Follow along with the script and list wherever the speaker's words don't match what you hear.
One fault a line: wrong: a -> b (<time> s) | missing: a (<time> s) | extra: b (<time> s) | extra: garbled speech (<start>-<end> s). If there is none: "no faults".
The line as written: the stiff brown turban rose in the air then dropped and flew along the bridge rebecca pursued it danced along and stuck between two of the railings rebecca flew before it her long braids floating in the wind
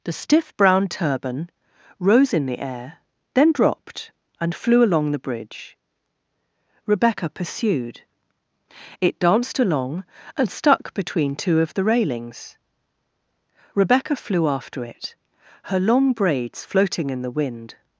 wrong: before -> after (14.5 s)